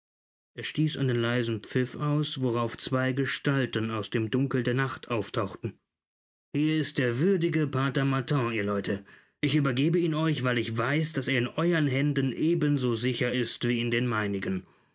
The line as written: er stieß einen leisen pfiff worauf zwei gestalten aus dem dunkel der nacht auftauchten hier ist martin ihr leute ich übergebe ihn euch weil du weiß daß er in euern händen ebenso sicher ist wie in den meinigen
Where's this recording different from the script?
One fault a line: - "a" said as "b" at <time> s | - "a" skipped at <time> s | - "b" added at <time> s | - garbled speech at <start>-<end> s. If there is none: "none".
- "aus" added at 1.9 s
- "der würdige pater" added at 7.0 s
- "du" said as "ich" at 10.6 s